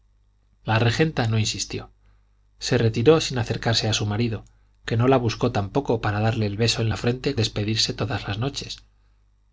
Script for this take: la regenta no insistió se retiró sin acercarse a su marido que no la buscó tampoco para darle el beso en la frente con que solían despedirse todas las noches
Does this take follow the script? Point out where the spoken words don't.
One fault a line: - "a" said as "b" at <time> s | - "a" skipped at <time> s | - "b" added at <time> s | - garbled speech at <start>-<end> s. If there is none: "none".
- "con que solían" skipped at 7.4 s